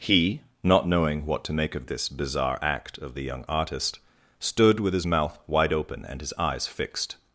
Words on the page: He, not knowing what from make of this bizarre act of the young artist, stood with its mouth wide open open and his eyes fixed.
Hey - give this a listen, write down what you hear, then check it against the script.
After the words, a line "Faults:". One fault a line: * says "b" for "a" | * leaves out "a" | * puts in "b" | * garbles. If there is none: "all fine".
He, not knowing what to make of this bizarre act of the young artist, stood with his mouth wide open and his eyes fixed.
Faults:
* says "to" for "from"
* says "his" for "its"
* leaves out "open"